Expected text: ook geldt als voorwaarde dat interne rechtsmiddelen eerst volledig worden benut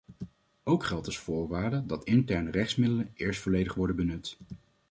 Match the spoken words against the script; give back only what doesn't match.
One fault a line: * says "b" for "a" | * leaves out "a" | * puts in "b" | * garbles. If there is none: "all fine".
all fine